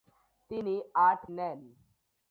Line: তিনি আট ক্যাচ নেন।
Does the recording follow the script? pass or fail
fail